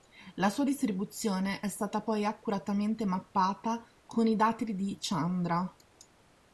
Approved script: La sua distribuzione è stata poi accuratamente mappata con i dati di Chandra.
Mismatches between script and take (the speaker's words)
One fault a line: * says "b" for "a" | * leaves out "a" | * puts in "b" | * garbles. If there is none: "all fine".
all fine